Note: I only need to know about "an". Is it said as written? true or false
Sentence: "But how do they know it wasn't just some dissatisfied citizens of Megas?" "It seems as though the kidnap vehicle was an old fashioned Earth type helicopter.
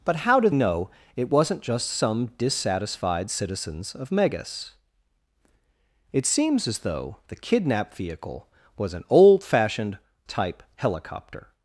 true